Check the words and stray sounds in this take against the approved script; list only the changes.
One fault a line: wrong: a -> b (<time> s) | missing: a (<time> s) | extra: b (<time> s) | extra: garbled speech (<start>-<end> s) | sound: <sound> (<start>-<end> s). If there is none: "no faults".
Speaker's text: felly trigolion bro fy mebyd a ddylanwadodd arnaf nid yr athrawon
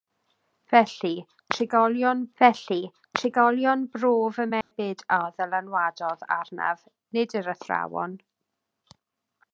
extra: felly trigolion (2.4 s)
sound: dropout (4.6-4.7 s)